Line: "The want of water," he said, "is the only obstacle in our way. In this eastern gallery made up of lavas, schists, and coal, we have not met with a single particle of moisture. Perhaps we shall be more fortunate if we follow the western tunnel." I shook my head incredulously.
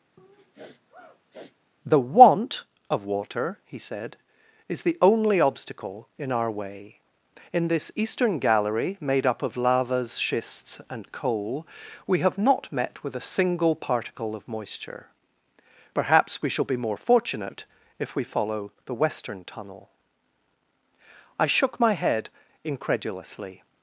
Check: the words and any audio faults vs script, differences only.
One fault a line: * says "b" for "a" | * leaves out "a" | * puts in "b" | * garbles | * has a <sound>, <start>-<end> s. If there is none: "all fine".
* has a sniff, 0.2-1.6 s